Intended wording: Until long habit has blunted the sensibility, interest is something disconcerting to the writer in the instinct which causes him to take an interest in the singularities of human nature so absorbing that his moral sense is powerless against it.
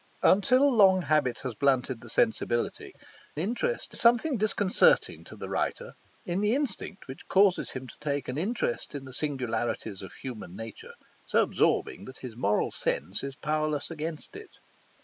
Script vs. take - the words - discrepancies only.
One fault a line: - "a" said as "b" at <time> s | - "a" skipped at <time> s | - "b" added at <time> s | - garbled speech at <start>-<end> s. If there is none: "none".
none